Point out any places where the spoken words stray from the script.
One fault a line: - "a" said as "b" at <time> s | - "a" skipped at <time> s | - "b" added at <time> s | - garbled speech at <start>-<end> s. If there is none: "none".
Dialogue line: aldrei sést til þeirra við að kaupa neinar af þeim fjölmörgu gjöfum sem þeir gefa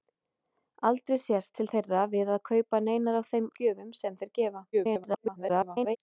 - "fjölmörgu" skipped at 3.5 s
- garbled speech at 4.7-6.0 s